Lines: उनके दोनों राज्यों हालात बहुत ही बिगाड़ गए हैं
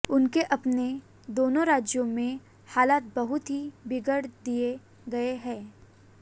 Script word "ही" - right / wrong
right